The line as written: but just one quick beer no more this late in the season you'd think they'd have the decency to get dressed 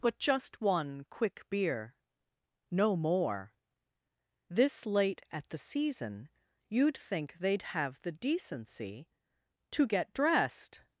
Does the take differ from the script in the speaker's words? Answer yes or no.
yes